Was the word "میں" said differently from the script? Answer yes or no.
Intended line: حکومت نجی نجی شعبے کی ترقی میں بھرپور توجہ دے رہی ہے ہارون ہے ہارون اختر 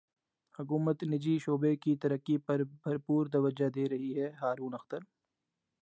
yes